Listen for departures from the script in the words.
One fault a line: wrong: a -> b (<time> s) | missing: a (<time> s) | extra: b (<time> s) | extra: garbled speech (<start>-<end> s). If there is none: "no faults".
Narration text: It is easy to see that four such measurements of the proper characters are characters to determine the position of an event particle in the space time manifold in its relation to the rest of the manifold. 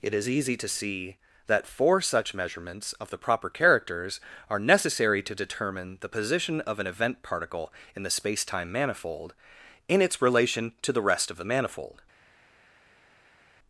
wrong: characters -> necessary (4.6 s)